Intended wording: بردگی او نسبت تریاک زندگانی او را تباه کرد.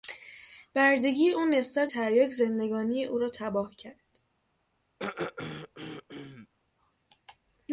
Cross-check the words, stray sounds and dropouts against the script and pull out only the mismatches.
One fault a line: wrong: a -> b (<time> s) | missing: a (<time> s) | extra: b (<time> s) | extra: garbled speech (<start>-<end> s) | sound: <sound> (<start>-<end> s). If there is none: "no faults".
sound: throat clearing (5.0-6.5 s)